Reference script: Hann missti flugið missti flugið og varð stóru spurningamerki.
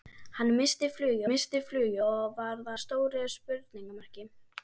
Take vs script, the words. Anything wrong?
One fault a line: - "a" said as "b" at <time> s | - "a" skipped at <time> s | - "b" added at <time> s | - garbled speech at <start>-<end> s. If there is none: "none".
none